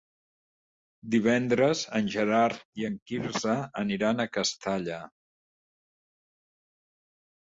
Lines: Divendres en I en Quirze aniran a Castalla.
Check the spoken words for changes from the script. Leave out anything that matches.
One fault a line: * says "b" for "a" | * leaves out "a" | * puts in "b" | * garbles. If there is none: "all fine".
* puts in "Gerard"